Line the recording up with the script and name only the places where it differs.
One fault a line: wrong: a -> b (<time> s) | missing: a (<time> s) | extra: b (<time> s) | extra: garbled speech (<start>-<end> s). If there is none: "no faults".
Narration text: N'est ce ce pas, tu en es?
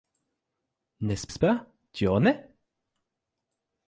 no faults